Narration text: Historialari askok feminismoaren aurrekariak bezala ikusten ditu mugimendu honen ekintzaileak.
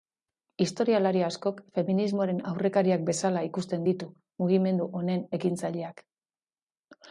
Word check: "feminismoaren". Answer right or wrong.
right